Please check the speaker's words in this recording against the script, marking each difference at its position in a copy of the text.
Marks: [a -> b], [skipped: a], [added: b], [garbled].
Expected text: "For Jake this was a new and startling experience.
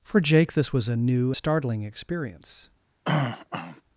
"For Jake this was a new [skipped: and] startling experience.